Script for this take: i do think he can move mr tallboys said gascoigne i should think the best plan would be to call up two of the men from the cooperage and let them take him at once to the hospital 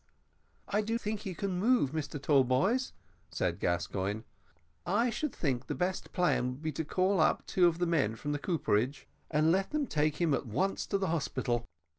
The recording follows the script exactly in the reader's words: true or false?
true